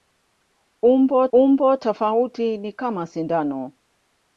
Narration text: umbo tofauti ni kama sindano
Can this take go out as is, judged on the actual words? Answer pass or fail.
fail